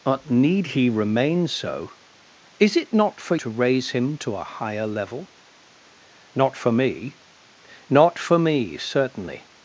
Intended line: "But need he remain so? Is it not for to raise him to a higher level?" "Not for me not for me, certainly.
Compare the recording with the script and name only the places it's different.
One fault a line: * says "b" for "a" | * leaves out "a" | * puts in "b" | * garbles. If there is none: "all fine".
all fine